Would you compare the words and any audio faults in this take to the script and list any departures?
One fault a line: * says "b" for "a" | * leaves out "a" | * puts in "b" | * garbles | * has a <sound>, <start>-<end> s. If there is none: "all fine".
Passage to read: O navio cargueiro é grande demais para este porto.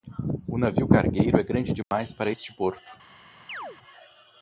* has a dropout, 1.8-1.9 s
* has a chirp, 3.5-3.8 s